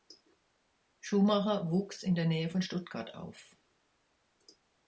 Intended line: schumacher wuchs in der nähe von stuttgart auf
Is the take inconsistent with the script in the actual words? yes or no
no